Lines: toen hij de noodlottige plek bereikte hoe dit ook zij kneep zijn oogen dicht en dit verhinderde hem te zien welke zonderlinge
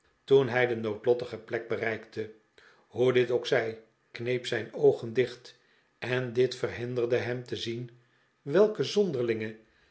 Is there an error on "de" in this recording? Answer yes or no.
no